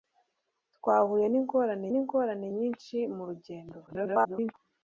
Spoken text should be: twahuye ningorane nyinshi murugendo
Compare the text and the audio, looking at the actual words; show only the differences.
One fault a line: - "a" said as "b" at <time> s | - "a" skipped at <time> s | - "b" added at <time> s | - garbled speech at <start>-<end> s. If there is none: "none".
- "ningorane" added at 1.9 s
- garbled speech at 3.9-4.5 s